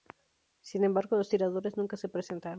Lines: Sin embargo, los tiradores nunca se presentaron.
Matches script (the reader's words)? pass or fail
pass